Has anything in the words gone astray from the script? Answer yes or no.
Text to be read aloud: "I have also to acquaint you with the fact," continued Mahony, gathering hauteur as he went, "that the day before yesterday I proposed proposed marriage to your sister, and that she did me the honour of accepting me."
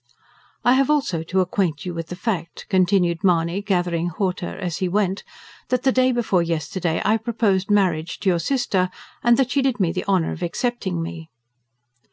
yes